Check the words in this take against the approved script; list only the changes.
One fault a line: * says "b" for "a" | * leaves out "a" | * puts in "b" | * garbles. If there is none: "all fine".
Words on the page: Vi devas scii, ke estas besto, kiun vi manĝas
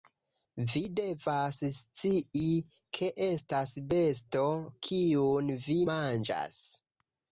all fine